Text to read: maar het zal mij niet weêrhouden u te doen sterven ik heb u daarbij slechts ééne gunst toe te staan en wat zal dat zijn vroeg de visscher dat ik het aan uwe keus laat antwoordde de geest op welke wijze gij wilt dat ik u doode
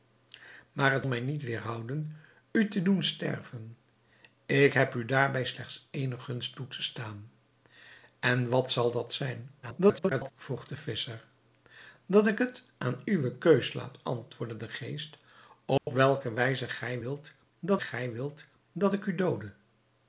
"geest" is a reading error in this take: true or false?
false